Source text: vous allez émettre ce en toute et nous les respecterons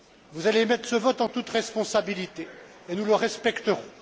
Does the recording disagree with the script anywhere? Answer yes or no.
yes